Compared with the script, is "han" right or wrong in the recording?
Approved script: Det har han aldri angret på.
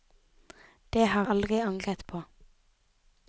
wrong